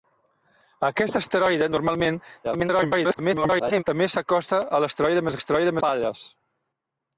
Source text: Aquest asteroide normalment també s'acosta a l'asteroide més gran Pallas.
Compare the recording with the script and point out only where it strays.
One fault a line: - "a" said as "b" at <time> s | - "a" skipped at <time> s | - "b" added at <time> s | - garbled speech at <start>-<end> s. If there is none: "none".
- garbled speech at 2.4-3.8 s
- "gran" said as "l'asteroide" at 5.4 s